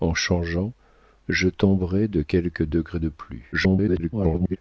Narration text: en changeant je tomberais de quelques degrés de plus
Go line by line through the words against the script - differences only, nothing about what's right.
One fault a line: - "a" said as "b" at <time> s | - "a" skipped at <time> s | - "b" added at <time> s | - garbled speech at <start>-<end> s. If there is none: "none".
- garbled speech at 3.5-4.6 s